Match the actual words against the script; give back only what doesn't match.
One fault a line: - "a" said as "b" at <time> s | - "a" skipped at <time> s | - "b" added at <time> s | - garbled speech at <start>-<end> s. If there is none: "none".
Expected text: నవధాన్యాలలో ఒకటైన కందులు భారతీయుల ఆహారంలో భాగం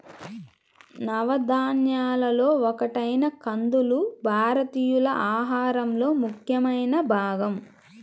- "ముఖ్యమైన" added at 6.2 s